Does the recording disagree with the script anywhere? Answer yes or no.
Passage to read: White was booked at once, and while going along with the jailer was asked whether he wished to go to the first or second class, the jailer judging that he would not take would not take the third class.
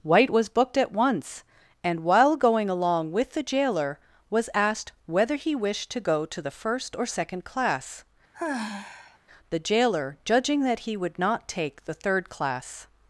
yes